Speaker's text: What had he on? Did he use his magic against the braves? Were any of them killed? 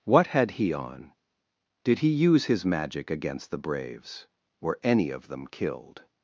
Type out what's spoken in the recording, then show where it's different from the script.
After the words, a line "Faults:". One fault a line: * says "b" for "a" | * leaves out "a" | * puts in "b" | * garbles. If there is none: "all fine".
What had he on? Did he use his magic against the braves? Were any of them killed?
Faults:
all fine